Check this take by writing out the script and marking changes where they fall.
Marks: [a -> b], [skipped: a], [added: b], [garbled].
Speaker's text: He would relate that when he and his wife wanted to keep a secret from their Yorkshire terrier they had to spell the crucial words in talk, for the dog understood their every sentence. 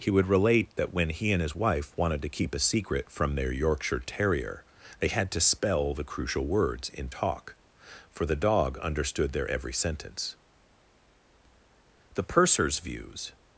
He would relate that when he and his wife wanted to keep a secret from their Yorkshire terrier they had to spell the crucial words in talk, for the dog understood their every sentence. [added: The purser's views]